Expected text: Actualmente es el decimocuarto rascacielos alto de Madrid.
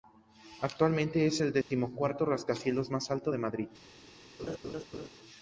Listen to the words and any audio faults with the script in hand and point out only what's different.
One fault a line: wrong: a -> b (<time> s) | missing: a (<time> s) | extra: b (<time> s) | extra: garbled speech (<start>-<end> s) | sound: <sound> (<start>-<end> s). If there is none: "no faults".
sound: dropout (1.6-1.7 s)
extra: más (2.9 s)
sound: laugh (4.4-5.1 s)